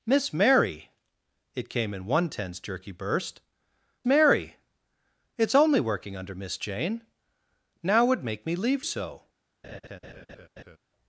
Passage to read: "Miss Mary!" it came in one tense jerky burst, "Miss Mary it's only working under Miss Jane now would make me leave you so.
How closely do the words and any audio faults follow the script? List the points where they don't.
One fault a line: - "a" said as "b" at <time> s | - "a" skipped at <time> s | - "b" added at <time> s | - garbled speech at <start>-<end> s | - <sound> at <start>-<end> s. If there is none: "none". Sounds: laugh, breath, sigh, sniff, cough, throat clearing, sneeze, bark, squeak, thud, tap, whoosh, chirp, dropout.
- "Miss" skipped at 3.4 s
- "you" skipped at 8.8 s
- laugh at 9.6-10.8 s